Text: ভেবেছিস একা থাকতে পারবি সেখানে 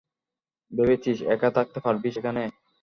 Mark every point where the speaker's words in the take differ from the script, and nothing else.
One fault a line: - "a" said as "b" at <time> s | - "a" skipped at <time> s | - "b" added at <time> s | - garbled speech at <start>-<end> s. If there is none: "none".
none